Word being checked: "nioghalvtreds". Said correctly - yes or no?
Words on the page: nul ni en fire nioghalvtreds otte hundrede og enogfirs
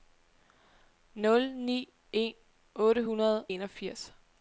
no